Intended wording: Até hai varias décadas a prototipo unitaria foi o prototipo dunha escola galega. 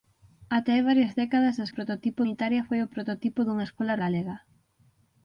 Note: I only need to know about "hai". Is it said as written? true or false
true